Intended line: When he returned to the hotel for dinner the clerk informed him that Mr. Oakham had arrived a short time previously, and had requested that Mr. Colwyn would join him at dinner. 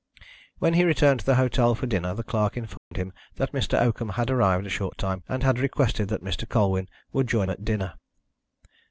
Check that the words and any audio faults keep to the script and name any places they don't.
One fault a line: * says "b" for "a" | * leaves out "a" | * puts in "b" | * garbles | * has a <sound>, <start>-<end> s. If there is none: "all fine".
* has a dropout, 2.8-2.9 s
* leaves out "previously"
* leaves out "him"